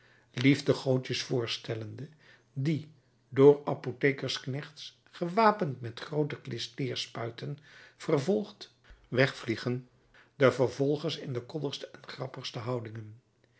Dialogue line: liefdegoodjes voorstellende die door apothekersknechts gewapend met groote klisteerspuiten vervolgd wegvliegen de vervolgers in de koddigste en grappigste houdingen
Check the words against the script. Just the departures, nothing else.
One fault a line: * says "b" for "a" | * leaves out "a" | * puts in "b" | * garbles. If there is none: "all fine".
all fine